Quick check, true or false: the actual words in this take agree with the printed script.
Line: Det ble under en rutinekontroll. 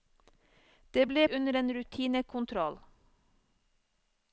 true